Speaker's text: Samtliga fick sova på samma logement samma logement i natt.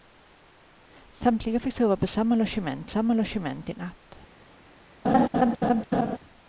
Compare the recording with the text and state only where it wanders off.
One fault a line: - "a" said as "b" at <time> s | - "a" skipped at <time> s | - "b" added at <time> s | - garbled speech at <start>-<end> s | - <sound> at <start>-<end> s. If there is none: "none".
- laugh at 5.0-6.2 s